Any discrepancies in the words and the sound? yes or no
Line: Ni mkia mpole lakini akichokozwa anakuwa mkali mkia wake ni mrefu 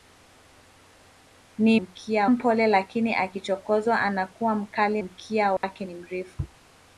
yes